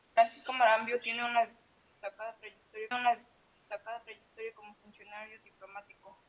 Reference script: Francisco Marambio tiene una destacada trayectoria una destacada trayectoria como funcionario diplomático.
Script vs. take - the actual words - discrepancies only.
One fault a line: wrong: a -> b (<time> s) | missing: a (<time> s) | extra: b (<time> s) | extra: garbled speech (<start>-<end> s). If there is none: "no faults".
no faults